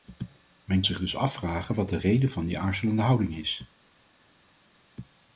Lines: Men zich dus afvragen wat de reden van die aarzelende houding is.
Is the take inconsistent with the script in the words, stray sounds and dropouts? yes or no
no